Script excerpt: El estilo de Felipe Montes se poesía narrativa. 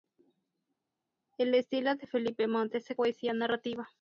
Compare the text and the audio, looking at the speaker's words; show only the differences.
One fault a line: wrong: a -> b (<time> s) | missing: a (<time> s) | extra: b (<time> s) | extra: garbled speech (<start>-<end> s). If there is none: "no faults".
no faults